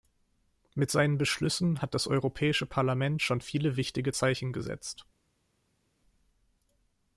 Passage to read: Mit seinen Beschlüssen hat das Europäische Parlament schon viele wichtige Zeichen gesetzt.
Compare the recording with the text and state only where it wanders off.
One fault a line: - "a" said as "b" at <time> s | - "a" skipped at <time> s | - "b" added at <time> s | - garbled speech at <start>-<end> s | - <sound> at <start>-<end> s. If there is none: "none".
none